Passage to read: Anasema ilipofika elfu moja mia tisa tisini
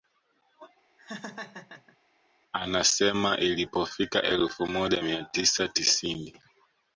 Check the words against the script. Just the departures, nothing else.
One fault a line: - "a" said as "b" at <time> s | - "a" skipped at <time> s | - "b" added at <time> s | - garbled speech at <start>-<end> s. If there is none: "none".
none